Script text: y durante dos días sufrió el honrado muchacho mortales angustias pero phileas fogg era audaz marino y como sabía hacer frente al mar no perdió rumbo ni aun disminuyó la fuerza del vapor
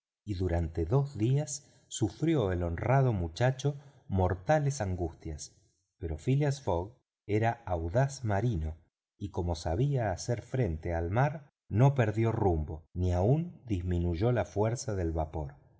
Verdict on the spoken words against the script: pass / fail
pass